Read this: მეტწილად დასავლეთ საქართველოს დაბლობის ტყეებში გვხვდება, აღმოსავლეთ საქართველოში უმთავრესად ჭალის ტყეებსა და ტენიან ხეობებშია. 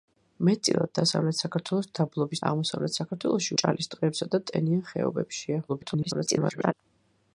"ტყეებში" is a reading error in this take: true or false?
true